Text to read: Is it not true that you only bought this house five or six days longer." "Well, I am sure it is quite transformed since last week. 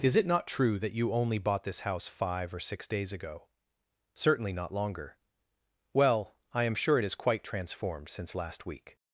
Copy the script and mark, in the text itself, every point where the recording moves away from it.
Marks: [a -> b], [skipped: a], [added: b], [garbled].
Is it not true that you only bought this house five or six days [added: ago Certainly not] longer." "Well, I am sure it is quite transformed since last week.